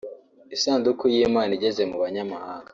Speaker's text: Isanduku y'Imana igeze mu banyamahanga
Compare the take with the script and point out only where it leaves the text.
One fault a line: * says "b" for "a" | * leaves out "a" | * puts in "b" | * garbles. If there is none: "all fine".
all fine